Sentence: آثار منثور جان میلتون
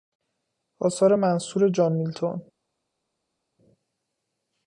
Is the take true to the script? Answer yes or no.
yes